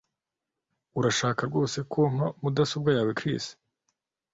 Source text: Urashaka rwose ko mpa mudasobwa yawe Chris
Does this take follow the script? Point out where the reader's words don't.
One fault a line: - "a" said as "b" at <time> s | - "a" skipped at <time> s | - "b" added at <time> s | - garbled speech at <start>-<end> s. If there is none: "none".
none